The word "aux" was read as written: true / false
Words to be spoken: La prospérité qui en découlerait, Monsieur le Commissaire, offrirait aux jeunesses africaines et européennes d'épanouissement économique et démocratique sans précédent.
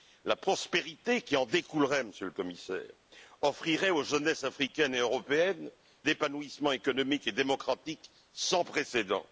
true